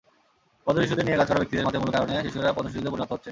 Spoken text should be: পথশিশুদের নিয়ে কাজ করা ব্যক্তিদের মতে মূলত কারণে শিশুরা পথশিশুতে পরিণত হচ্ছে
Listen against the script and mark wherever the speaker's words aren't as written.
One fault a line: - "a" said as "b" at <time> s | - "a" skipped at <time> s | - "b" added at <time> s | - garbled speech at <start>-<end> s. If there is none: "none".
none